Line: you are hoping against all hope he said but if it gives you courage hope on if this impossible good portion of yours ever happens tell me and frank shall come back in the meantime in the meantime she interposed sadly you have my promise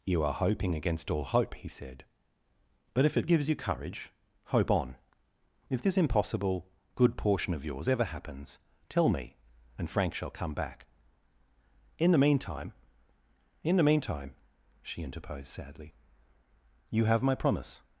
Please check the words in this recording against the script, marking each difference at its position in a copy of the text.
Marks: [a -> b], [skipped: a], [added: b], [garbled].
you are hoping against all hope he said but if it gives you courage hope on if this impossible good portion of yours ever happens tell me and frank shall come back in the meantime in the meantime she interposed sadly you have my promise